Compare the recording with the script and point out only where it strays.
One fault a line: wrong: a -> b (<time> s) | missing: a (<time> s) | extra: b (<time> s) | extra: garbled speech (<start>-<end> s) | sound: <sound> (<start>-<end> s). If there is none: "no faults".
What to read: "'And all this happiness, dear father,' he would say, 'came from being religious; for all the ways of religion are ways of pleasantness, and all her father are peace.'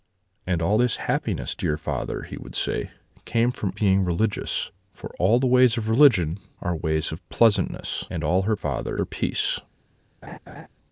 sound: laugh (10.2-10.7 s)